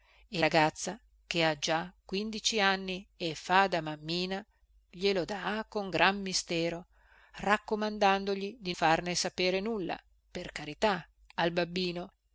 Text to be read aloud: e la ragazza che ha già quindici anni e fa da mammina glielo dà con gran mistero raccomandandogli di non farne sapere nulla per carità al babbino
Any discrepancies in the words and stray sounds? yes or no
yes